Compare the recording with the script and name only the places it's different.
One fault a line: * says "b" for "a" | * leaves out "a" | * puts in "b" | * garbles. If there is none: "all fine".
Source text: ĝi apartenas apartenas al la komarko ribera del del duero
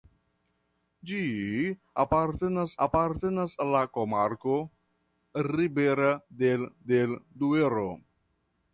all fine